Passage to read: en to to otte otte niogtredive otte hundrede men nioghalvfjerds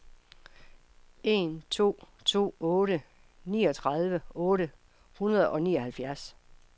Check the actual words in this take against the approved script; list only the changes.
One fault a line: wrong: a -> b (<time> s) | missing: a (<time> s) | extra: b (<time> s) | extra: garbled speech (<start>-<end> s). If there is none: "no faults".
missing: otte (3.0 s)
wrong: men -> og (5.5 s)